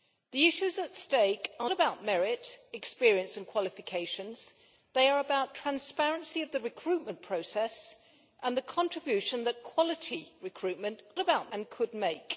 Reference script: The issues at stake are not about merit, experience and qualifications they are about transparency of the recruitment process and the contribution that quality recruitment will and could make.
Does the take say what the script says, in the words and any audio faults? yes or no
no